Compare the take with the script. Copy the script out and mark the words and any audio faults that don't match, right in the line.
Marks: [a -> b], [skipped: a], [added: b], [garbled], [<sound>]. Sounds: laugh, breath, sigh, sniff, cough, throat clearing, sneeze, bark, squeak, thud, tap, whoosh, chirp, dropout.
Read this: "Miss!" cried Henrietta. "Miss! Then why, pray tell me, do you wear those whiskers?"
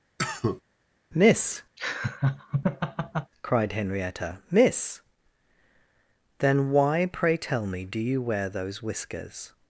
[cough] "Miss!" [laugh] cried Henrietta. "Miss! Then why, pray tell me, do you wear those whiskers?"